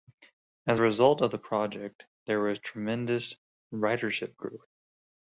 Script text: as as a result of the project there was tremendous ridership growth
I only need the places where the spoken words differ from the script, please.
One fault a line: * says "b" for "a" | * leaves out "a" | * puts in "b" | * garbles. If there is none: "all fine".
* leaves out "as"